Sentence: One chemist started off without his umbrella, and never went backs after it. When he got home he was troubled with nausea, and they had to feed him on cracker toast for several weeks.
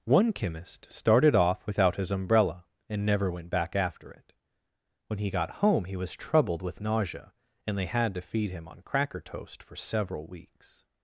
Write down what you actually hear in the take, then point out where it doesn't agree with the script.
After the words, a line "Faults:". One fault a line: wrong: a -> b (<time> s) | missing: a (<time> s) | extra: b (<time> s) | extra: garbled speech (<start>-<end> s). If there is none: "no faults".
One chemist started off without his umbrella, and never went back after it. When he got home he was troubled with nausea, and they had to feed him on cracker toast for several weeks.
Faults:
wrong: backs -> back (3.5 s)